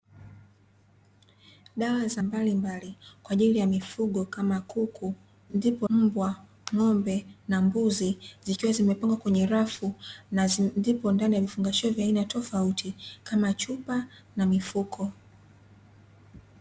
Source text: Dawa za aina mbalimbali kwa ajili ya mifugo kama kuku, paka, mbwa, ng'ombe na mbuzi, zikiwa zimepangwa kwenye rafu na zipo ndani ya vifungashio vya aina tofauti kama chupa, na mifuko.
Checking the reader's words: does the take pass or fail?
fail